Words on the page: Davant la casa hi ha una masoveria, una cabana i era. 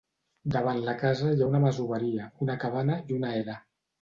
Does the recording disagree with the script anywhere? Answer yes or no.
yes